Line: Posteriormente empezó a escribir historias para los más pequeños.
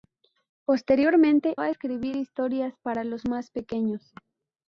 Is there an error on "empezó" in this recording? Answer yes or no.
yes